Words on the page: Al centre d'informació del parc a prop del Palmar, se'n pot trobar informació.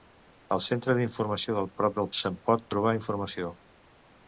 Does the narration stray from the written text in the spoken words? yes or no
yes